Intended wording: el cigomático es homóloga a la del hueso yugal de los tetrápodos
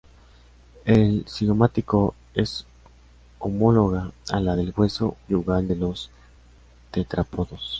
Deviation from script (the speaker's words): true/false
false